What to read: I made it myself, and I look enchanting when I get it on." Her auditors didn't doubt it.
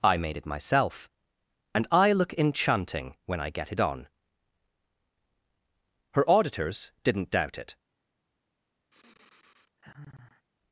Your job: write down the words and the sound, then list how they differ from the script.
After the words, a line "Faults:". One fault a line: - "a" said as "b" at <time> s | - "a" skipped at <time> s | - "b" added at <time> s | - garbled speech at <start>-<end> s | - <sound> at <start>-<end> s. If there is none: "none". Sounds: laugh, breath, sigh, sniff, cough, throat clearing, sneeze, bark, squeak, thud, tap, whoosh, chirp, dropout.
I made it myself, and I look enchanting when I get it on." Her auditors didn't doubt it.
Faults:
- sigh at 8.9-10.5 s